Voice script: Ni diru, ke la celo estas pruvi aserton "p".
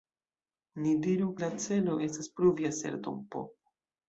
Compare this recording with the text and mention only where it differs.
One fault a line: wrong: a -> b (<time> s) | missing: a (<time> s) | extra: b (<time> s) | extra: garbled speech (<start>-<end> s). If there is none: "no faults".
missing: ke (1.3 s)